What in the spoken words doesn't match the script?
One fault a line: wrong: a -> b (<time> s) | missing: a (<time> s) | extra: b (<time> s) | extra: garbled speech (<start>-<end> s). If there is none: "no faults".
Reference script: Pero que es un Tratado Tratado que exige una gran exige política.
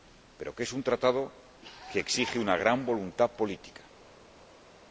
missing: Tratado (1.3 s)
wrong: exige -> voluntad (2.9 s)